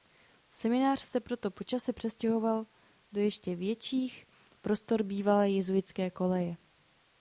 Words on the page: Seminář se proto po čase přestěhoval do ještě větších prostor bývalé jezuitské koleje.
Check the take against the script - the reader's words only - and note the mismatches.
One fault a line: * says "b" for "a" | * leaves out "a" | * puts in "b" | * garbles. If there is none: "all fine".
all fine